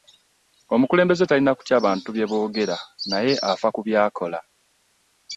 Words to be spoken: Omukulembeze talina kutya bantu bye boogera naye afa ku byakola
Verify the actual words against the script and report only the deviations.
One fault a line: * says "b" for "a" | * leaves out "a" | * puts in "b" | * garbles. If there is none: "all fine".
all fine